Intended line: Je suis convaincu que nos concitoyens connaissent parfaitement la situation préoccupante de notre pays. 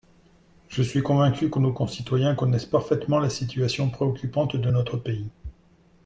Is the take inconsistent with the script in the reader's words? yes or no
no